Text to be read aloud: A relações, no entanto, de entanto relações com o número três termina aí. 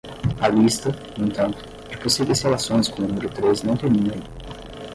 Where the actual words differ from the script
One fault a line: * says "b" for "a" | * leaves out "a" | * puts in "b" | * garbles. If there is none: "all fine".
* says "lista" for "relações"
* says "possíveis" for "entanto"
* puts in "não"